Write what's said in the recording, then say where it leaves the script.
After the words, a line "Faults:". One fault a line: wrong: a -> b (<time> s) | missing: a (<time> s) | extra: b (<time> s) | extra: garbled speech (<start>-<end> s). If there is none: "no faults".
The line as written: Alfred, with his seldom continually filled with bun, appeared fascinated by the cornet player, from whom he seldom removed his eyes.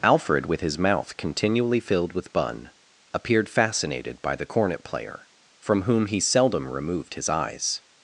Alfred, with his mouth continually filled with bun, appeared fascinated by the cornet player, from whom he seldom removed his eyes.
Faults:
wrong: seldom -> mouth (0.8 s)